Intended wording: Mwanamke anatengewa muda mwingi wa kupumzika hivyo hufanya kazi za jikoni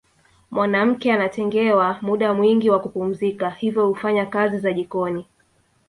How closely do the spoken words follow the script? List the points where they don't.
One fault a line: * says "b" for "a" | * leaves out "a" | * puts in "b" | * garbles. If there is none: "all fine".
all fine